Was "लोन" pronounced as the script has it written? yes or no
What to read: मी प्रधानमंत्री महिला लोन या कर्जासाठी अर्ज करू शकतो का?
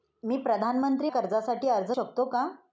no